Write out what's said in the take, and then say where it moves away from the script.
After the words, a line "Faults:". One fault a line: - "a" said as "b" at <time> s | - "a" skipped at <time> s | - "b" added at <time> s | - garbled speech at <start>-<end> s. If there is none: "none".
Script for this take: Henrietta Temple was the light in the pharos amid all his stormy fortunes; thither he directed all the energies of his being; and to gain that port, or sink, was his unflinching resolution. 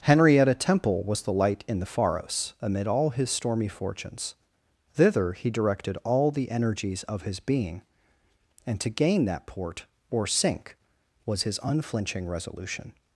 Henrietta Temple was the light in the pharos amid all his stormy fortunes; thither he directed all the energies of his being; and to gain that port, or sink, was his unflinching resolution.
Faults:
none